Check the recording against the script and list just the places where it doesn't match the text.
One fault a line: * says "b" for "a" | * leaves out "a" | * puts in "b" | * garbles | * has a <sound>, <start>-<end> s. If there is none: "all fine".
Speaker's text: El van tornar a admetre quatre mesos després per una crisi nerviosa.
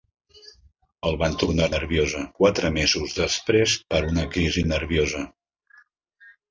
* says "nerviosa" for "admetre"